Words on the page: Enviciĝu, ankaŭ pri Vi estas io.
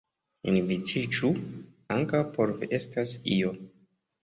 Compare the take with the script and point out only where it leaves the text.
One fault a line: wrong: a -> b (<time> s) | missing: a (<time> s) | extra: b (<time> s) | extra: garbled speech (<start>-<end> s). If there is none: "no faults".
wrong: pri -> por (2.4 s)